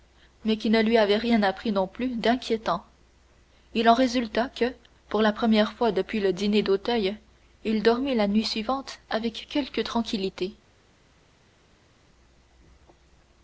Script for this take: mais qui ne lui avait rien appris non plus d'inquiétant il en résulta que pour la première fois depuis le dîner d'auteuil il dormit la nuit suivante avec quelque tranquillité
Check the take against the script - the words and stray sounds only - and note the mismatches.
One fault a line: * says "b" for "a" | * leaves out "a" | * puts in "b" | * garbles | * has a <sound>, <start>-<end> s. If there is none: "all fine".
all fine